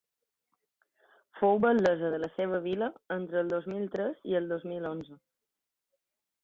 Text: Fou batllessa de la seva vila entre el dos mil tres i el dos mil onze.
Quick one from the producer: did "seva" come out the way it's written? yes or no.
yes